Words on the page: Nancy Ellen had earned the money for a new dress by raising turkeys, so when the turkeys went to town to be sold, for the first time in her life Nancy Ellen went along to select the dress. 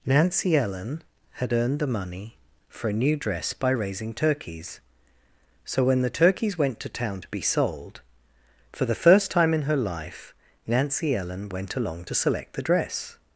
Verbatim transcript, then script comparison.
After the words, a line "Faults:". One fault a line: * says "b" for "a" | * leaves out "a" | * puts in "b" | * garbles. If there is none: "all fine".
Nancy Ellen had earned the money for a new dress by raising turkeys, so when the turkeys went to town to be sold, for the first time in her life Nancy Ellen went along to select the dress.
Faults:
all fine